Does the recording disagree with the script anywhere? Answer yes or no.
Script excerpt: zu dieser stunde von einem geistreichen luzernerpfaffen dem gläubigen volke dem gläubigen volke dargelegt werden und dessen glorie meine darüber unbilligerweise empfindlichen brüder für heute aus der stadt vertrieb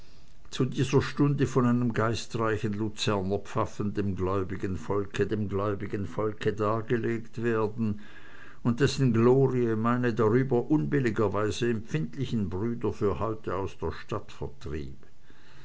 no